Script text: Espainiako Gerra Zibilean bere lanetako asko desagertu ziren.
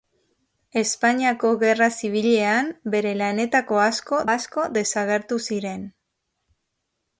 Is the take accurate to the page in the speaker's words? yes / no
no